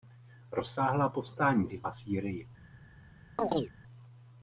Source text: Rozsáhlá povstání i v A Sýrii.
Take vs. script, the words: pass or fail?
pass